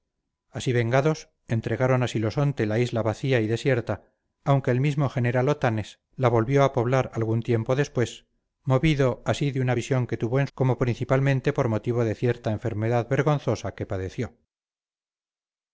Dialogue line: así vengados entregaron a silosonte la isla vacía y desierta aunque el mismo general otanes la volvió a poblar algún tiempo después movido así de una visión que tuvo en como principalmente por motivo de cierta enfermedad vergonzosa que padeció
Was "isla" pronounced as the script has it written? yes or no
yes